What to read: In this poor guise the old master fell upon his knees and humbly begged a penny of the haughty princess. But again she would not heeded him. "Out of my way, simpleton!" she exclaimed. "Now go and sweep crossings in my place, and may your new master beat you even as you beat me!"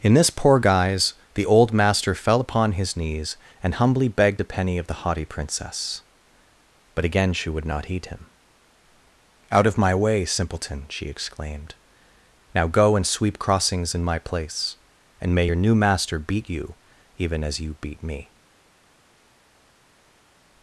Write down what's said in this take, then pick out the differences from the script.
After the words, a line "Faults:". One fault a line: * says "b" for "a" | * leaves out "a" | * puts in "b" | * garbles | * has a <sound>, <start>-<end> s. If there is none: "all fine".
In this poor guise the old master fell upon his knees and humbly begged a penny of the haughty princess. But again she would not heed him. "Out of my way, simpleton!" she exclaimed. "Now go and sweep crossings in my place, and may your new master beat you even as you beat me!"
Faults:
* says "heed" for "heeded"